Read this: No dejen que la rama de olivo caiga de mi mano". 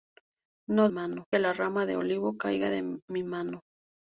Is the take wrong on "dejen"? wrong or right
wrong